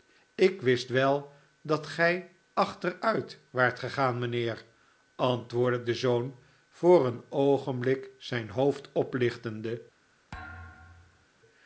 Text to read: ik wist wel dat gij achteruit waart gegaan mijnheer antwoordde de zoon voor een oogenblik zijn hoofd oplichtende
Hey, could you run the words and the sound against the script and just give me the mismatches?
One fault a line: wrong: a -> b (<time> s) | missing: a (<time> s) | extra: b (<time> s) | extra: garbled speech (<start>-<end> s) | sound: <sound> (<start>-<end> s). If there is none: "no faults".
sound: thud (10.3-11.3 s)